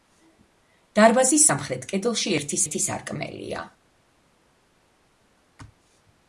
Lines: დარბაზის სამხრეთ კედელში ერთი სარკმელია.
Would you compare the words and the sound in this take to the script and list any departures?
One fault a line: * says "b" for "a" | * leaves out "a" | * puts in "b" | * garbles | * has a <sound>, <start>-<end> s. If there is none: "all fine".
* puts in "ერთი"